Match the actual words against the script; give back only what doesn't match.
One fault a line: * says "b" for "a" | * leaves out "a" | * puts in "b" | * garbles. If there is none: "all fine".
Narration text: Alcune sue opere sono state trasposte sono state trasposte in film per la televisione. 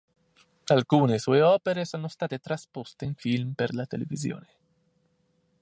* leaves out "sono state trasposte"